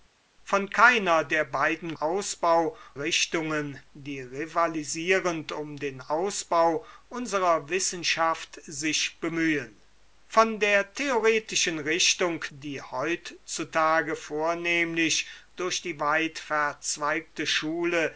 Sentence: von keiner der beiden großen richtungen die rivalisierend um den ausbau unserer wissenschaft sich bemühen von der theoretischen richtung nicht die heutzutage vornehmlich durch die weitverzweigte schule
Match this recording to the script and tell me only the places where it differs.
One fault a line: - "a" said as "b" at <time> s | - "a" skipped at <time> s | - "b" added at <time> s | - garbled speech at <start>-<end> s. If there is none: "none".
- "großen" said as "ausbau" at 1.9 s
- "nicht" skipped at 12.4 s